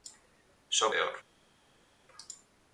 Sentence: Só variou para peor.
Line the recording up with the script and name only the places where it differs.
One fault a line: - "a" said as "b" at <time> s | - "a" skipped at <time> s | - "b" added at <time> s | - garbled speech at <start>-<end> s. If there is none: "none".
- "variou para" skipped at 0.9 s